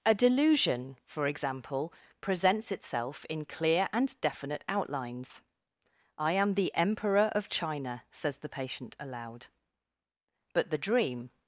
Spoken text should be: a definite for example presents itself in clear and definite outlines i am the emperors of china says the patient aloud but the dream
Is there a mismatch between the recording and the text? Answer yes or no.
yes